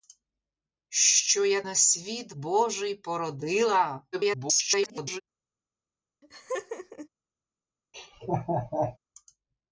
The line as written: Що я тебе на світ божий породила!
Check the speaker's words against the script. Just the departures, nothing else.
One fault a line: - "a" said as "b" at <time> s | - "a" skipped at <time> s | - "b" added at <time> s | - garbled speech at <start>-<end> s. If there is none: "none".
- "тебе" skipped at 1.6 s
- garbled speech at 4.1-5.2 s